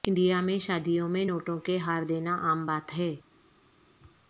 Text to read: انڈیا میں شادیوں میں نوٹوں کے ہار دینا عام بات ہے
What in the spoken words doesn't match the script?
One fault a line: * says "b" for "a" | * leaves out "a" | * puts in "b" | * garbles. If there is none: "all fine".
all fine